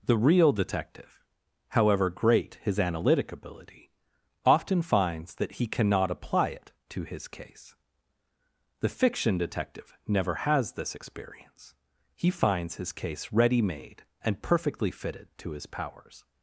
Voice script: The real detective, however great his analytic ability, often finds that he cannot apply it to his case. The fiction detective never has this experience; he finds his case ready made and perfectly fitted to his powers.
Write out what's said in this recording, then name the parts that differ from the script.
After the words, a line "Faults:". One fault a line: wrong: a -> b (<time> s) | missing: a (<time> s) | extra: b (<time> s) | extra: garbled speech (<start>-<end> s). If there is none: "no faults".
The real detective, however great his analytic ability, often finds that he cannot apply it to his case. The fiction detective never has this experience; he finds his case ready made and perfectly fitted to his powers.
Faults:
no faults